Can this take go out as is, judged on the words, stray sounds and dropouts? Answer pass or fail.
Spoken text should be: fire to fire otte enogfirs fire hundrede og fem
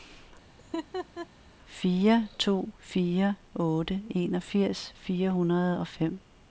fail